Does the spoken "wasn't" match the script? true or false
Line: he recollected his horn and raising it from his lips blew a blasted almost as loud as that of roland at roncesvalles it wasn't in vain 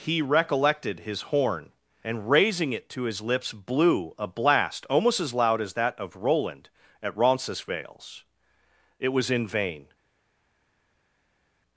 false